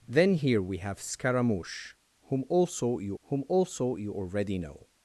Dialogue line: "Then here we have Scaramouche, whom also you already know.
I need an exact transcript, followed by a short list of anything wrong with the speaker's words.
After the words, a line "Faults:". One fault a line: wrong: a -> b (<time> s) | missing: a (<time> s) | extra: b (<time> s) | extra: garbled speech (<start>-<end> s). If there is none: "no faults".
"Then here we have Scaramouche, whom also you whom also you already know.
Faults:
extra: whom also you (3.2 s)